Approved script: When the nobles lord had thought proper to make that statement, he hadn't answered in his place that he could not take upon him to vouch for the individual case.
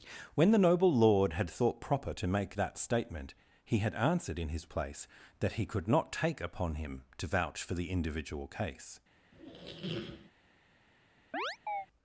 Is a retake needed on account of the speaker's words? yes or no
yes